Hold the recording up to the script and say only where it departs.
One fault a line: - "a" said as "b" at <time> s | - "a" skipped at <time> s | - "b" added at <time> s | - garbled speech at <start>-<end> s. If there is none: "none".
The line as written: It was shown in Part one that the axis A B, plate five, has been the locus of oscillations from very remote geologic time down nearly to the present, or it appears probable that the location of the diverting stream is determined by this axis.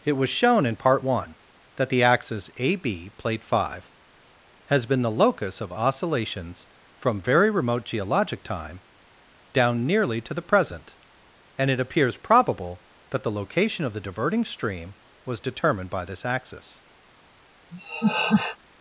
- "or" said as "and" at 11.6 s
- "is" said as "was" at 15.2 s